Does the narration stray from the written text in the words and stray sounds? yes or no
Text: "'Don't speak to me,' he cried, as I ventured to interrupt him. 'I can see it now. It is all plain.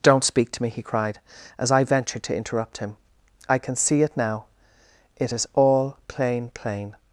yes